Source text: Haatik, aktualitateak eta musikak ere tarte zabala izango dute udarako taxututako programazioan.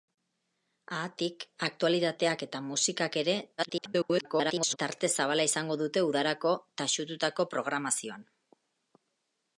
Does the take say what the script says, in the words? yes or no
no